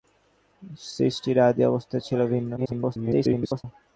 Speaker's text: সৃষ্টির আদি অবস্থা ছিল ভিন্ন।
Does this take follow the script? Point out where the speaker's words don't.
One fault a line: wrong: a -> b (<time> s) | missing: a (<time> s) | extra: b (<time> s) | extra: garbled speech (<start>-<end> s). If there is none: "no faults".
extra: garbled speech (2.6-3.6 s)